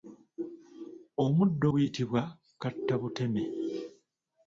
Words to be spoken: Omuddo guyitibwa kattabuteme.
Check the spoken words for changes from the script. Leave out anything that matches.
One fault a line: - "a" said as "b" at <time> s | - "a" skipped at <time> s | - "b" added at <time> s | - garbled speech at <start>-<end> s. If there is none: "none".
none